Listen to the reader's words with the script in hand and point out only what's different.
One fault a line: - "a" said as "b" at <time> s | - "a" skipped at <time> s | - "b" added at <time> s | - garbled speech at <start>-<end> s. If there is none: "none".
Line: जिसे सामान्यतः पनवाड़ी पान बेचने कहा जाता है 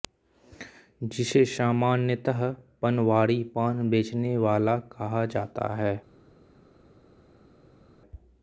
- "वाला" added at 4.4 s